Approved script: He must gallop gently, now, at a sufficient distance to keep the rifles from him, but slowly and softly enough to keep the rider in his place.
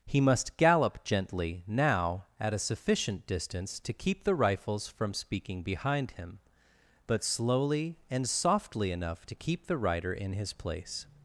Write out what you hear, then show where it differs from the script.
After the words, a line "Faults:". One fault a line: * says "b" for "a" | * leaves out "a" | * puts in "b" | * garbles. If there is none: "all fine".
He must gallop gently, now, at a sufficient distance to keep the rifles from speaking behind him, but slowly and softly enough to keep the rider in his place.
Faults:
* puts in "speaking behind"